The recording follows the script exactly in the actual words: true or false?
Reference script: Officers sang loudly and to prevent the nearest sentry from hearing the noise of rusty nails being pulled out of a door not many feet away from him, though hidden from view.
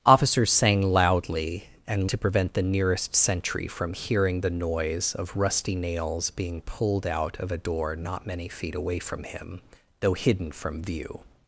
true